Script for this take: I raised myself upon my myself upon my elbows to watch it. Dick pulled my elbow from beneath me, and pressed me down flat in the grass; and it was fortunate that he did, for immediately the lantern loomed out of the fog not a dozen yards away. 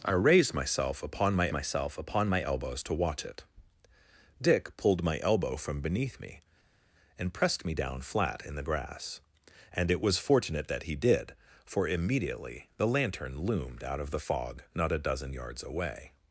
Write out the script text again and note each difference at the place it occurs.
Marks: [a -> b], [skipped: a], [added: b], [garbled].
I raised myself upon my myself upon my elbows to watch it. Dick pulled my elbow from beneath me, and pressed me down flat in the grass; and it was fortunate that he did, for immediately the lantern loomed out of the fog not a dozen yards away.